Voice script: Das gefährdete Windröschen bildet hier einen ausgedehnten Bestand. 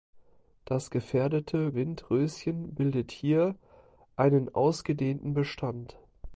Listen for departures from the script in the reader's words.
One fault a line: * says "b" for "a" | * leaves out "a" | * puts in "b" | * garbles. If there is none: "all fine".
all fine